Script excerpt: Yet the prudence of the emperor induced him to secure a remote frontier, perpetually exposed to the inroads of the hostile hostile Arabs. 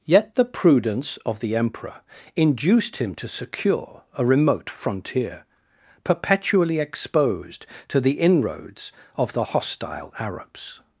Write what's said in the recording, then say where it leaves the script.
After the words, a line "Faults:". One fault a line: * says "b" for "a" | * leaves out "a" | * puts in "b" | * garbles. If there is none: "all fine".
Yet the prudence of the emperor induced him to secure a remote frontier, perpetually exposed to the inroads of the hostile Arabs.
Faults:
* leaves out "hostile"